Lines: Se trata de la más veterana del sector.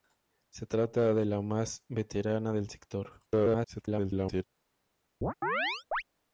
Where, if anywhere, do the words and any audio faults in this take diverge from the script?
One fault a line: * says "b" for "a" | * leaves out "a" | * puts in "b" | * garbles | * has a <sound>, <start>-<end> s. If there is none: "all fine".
* garbles
* has a chirp, 5.2-6.0 s